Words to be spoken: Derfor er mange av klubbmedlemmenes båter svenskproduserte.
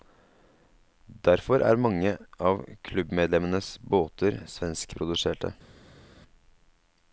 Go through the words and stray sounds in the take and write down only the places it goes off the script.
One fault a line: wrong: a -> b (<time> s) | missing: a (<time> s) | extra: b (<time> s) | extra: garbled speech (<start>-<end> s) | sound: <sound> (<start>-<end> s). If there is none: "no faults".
no faults